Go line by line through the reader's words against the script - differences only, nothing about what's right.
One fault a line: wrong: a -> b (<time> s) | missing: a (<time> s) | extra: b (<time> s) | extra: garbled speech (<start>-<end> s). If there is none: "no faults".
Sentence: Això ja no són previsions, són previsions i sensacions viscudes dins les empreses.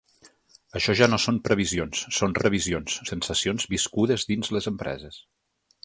no faults